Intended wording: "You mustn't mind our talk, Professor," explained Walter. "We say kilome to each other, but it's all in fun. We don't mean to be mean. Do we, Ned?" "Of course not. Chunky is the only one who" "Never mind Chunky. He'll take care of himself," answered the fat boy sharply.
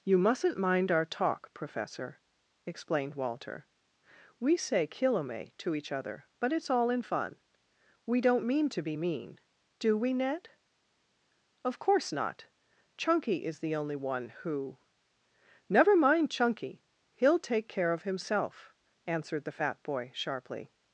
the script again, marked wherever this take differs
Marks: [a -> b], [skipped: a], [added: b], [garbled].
"You mustn't mind our talk, Professor," explained Walter. "We say kilome to each other, but it's all in fun. We don't mean to be mean. Do we, Ned?" "Of course not. Chunky is the only one who" "Never mind Chunky. He'll take care of himself," answered the fat boy sharply.